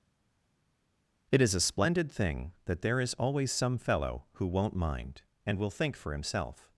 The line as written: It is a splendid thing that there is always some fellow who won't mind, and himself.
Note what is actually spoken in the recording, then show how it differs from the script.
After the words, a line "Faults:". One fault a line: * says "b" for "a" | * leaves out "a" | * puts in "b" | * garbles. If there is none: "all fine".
It is a splendid thing that there is always some fellow who won't mind, and will think for himself.
Faults:
* puts in "will think for"